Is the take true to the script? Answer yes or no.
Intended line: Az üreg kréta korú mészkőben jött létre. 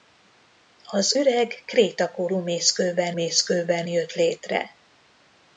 no